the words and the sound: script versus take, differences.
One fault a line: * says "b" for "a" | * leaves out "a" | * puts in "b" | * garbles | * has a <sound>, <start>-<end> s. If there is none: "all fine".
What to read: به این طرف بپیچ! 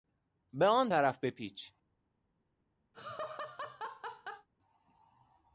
* says "آن" for "این"
* has a laugh, 2.9-4.5 s